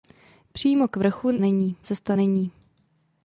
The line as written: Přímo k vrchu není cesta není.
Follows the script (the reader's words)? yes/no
yes